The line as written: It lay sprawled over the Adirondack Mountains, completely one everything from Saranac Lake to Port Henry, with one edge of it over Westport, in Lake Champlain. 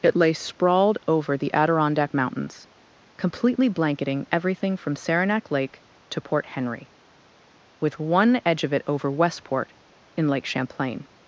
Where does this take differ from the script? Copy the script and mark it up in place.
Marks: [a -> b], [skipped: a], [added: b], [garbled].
It lay sprawled over the Adirondack Mountains, completely [one -> blanketing] everything from Saranac Lake to Port Henry, with one edge of it over Westport, in Lake Champlain.